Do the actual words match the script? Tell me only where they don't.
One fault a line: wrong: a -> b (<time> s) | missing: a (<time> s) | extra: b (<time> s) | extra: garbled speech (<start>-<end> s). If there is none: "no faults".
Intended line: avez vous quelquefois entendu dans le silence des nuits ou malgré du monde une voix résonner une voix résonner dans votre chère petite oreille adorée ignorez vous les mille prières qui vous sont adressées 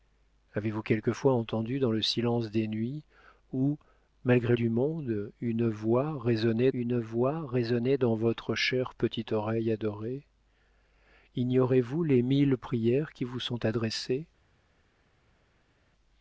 no faults